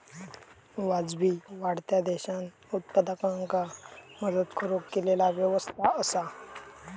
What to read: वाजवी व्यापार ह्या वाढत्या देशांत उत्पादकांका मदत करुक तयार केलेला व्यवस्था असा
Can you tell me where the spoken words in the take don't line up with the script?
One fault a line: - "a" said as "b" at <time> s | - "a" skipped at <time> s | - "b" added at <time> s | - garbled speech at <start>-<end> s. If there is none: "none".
- "व्यापार ह्या" skipped at 1.3 s
- "तयार" skipped at 4.9 s